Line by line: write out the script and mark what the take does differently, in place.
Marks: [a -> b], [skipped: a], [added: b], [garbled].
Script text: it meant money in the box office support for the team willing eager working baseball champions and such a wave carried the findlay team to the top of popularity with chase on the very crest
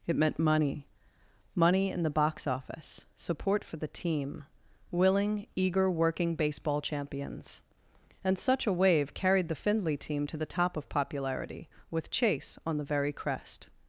it meant money [added: money] in the box office support for the team willing eager working baseball champions and such a wave carried the findlay team to the top of popularity with chase on the very crest